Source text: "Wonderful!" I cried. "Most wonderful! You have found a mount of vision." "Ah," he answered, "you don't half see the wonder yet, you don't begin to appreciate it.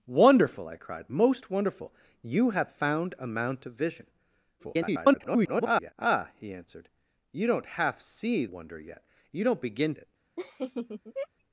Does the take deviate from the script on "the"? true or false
true